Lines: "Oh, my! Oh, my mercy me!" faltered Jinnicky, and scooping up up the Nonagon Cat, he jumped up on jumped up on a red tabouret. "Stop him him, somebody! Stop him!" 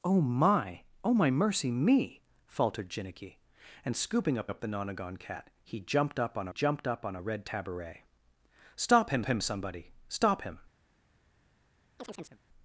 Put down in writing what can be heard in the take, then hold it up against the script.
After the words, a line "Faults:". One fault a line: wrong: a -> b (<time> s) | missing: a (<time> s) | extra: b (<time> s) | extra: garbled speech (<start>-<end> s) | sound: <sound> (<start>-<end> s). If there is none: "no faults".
"Oh, my! Oh, my mercy me!" faltered Jinnicky, and scooping up up the Nonagon Cat, he jumped up on jumped up on a red tabouret. "Stop him him, somebody! Stop him!"
Faults:
sound: chirp (12.0-12.4 s)